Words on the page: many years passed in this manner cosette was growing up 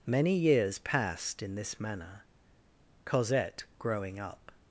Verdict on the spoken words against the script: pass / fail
fail